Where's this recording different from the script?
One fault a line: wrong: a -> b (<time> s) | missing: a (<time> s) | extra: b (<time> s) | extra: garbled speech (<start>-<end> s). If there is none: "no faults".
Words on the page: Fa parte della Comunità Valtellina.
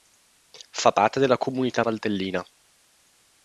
no faults